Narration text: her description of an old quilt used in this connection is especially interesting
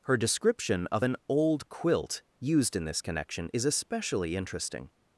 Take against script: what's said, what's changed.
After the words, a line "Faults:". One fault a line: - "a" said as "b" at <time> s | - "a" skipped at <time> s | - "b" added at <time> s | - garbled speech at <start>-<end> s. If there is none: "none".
her description of an old quilt used in this connection is especially interesting
Faults:
none